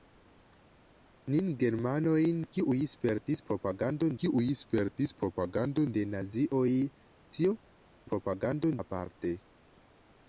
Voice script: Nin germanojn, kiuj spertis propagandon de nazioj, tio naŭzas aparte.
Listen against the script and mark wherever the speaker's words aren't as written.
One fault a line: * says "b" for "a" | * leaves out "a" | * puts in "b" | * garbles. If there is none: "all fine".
* puts in "kiuj spertis propagandon"
* says "propagandon" for "naŭzas"